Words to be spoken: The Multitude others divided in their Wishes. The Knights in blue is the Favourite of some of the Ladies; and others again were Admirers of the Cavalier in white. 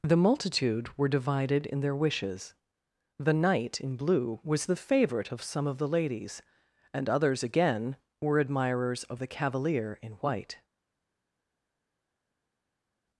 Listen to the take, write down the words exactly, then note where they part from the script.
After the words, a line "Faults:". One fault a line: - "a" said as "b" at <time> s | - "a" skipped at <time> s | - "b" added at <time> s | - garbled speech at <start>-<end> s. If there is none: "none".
The Multitude were divided in their Wishes. The Knight in blue was the Favourite of some of the Ladies; and others again were Admirers of the Cavalier in white.
Faults:
- "others" said as "were" at 1.0 s
- "Knights" said as "Knight" at 3.4 s
- "is" said as "was" at 4.4 s